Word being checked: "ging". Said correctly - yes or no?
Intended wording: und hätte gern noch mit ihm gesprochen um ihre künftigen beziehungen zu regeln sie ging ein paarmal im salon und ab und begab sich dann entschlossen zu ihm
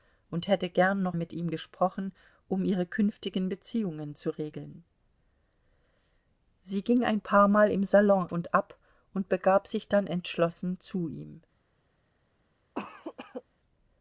yes